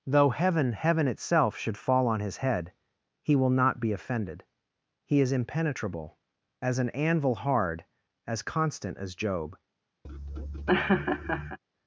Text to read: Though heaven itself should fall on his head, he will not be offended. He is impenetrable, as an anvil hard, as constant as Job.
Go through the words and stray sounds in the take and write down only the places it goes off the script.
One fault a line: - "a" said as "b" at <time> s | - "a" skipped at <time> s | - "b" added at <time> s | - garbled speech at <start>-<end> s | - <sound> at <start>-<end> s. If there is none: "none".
- "heaven" added at 0.7 s
- laugh at 10.0-11.6 s